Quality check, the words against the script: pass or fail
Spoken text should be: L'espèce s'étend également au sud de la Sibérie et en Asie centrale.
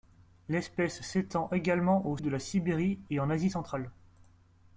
fail